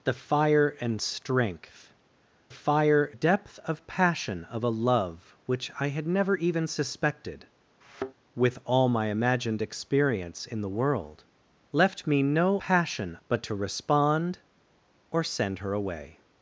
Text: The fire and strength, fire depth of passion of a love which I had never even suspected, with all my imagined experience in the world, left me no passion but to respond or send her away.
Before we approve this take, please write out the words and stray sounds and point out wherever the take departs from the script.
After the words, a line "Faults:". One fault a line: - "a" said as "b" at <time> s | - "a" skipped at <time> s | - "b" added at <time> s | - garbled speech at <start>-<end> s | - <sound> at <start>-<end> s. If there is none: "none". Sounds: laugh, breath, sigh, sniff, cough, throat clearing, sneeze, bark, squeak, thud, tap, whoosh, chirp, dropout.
The fire and strength, fire depth of passion of a love which I had never even suspected, with all my imagined experience in the world, left me no passion but to respond or send her away.
Faults:
- thud at 7.8-8.1 s